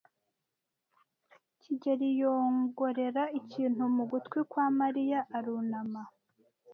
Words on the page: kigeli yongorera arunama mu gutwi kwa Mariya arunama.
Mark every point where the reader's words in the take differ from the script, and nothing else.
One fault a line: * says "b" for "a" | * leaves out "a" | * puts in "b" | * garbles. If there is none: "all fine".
* says "ikintu" for "arunama"